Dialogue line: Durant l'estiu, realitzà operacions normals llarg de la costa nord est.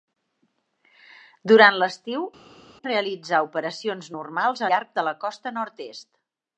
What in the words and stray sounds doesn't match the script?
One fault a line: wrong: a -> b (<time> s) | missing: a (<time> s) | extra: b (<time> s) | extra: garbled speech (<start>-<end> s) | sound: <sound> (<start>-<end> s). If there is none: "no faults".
no faults